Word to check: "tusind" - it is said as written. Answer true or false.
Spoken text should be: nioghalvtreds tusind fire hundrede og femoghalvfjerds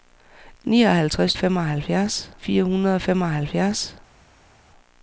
false